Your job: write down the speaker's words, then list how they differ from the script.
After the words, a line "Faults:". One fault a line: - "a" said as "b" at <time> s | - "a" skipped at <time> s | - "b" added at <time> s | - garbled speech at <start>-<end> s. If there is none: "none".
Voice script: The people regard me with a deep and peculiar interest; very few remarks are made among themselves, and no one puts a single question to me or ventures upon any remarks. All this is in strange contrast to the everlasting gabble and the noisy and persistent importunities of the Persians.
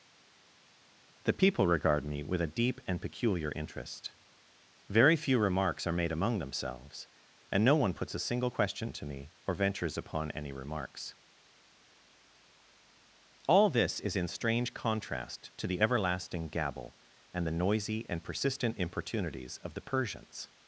The people regard me with a deep and peculiar interest; very few remarks are made among themselves, and no one puts a single question to me or ventures upon any remarks. All this is in strange contrast to the everlasting gabble and the noisy and persistent importunities of the Persians.
Faults:
none